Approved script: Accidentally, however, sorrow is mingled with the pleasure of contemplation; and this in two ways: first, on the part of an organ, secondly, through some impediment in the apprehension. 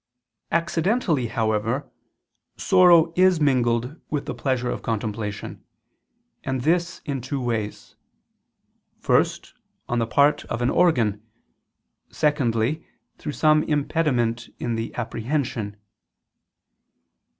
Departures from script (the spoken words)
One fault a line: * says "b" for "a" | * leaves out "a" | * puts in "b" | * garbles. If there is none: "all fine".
all fine